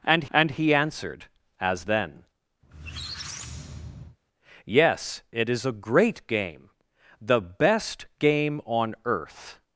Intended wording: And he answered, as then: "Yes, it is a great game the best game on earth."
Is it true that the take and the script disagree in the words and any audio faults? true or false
true